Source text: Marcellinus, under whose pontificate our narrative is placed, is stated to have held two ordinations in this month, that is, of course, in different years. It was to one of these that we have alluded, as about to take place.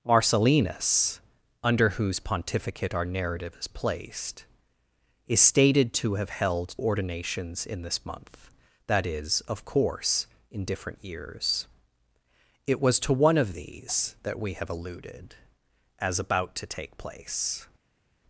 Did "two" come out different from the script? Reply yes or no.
yes